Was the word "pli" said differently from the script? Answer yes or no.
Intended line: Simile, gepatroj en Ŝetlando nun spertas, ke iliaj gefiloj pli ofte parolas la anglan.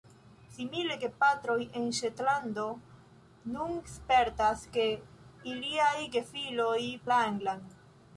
yes